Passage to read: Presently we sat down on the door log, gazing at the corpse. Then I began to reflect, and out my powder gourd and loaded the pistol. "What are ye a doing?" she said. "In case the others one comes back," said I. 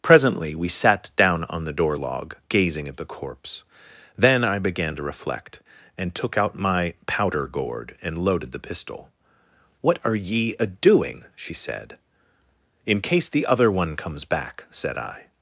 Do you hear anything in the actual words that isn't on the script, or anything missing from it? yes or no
yes